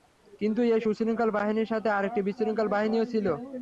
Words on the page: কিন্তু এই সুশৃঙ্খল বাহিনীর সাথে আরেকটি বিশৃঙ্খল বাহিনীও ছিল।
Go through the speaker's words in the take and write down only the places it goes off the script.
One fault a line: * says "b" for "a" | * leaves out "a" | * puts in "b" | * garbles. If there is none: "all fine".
all fine